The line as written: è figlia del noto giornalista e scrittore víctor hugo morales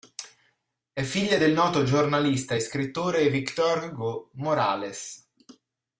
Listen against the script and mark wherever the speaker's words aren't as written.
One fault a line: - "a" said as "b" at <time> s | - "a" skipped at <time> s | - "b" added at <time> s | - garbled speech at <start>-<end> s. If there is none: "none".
none